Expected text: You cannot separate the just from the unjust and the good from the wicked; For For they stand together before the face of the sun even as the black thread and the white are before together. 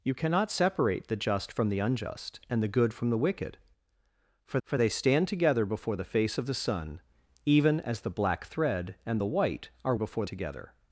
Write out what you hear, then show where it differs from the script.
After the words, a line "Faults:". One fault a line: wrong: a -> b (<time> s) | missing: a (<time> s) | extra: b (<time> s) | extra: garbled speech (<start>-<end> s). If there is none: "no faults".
You cannot separate the just from the unjust and the good from the wicked; For For they stand together before the face of the sun even as the black thread and the white are before together.
Faults:
no faults